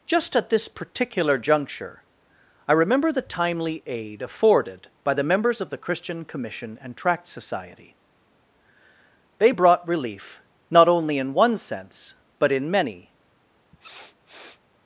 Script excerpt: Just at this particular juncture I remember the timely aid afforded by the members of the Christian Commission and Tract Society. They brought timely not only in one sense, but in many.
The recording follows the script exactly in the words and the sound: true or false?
false